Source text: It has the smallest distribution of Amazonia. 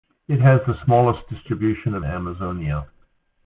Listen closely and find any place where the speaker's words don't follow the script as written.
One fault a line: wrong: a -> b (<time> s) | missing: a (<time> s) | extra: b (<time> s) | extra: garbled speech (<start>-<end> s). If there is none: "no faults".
no faults